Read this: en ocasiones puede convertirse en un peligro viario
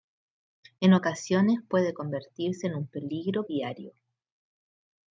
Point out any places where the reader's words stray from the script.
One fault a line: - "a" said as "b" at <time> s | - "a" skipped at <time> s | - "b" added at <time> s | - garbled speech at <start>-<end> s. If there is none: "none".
none